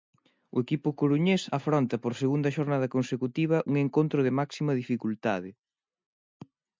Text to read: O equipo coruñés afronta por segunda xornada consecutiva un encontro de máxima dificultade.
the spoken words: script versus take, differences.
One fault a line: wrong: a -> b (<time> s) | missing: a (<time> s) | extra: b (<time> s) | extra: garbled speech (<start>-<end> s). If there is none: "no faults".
no faults